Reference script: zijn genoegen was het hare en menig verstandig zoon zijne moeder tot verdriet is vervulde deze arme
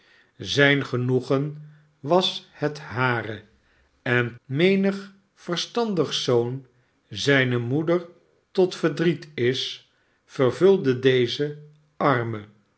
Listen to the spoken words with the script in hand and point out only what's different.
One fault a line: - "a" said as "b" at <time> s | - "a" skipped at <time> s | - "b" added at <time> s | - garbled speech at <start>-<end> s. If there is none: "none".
none